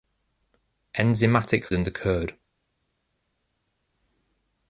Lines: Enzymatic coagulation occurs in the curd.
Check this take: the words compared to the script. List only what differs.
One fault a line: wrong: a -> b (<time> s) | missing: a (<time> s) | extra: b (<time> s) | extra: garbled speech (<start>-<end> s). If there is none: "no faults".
missing: coagulation occurs (1.7 s)